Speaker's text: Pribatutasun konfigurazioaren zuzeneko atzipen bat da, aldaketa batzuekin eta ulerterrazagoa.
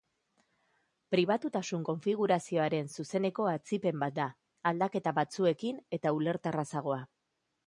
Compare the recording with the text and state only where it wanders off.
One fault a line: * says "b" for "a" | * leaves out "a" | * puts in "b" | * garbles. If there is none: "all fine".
all fine